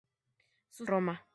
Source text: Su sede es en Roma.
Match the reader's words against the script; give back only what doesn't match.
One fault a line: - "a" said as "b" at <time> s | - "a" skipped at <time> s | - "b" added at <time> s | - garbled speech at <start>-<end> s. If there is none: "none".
- "sede es en" skipped at 0.9 s